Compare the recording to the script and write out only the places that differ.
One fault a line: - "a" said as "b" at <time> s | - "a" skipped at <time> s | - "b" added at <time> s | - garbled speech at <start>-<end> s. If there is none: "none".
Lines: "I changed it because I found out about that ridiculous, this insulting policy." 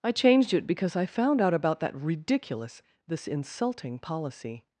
none